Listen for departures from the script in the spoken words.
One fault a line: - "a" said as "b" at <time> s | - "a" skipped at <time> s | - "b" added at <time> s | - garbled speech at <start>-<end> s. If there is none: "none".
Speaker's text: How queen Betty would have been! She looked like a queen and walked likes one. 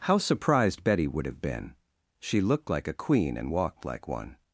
- "queen" said as "surprised" at 0.2 s
- "likes" said as "like" at 3.8 s